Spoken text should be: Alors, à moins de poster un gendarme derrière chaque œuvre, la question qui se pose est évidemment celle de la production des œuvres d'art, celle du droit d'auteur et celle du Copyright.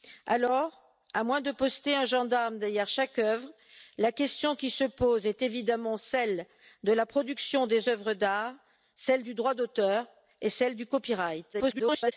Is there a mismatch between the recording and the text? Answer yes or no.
yes